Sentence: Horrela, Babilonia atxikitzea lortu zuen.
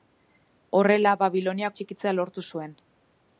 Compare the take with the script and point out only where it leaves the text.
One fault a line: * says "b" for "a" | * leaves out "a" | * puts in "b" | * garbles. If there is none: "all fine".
all fine